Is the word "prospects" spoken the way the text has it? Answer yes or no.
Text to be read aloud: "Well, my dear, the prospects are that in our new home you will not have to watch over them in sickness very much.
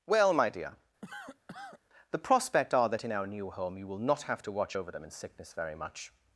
no